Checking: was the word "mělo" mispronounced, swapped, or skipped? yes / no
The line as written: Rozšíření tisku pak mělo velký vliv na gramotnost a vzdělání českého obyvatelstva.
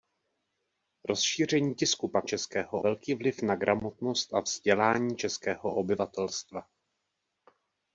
yes